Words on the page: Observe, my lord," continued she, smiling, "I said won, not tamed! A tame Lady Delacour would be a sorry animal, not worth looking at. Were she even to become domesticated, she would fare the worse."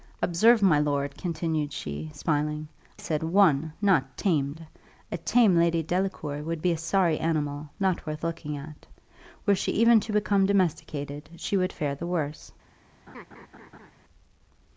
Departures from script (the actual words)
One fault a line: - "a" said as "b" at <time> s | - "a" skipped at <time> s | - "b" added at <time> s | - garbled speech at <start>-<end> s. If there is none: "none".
- "I" skipped at 2.7 s